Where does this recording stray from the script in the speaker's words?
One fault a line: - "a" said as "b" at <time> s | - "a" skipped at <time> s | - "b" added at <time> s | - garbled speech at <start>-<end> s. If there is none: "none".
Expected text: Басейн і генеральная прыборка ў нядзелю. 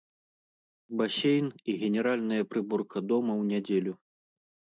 - "дома" added at 3.1 s